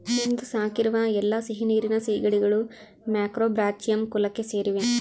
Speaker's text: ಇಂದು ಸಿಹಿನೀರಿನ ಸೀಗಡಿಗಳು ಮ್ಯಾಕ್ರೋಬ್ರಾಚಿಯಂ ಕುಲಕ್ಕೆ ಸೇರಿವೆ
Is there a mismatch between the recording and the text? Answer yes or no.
yes